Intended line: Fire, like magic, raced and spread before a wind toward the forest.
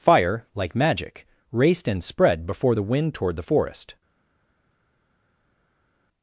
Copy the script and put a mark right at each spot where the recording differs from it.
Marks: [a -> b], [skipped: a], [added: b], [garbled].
Fire, like magic, raced and spread before [a -> the] wind toward the forest.